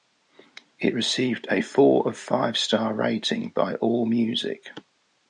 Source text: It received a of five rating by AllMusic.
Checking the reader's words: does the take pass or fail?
fail